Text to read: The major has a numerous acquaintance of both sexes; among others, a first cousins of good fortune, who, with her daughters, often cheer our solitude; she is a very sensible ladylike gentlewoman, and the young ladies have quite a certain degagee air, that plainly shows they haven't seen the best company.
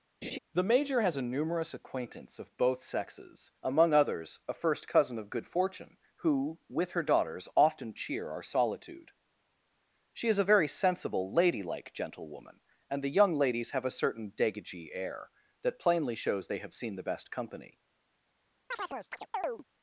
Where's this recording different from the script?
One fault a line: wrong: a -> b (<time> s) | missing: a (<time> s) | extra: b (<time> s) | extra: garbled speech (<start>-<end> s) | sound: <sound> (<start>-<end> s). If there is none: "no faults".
sound: laugh (0.2-0.4 s)
wrong: cousins -> cousin (4.9 s)
missing: quite (13.9 s)
wrong: haven't -> have (16.6 s)
sound: chirp (18.7-19.6 s)